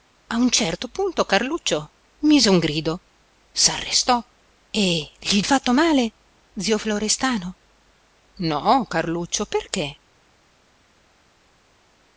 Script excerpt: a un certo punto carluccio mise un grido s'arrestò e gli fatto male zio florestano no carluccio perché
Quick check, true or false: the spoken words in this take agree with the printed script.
true